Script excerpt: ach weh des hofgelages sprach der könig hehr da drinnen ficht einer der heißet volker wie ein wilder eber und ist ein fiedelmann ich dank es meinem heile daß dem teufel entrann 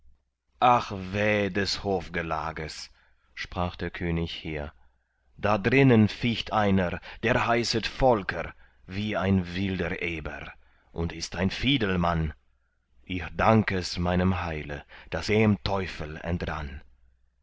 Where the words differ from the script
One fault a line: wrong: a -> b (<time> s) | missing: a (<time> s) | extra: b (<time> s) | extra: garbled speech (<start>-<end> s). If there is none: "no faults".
no faults